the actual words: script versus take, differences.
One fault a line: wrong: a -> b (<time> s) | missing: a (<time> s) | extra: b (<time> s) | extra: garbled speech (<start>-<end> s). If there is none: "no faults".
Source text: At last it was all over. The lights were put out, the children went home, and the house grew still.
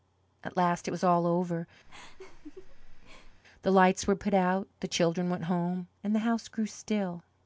no faults